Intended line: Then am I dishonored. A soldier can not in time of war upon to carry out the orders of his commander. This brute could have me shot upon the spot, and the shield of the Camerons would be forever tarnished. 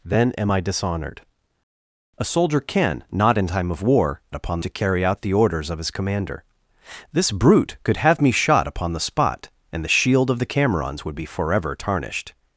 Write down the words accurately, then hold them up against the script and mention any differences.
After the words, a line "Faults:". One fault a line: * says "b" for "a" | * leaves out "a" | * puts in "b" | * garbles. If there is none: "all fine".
Then am I dishonored. A soldier can not in time of war upon to carry out the orders of his commander. This brute could have me shot upon the spot, and the shield of the Camerons would be forever tarnished.
Faults:
all fine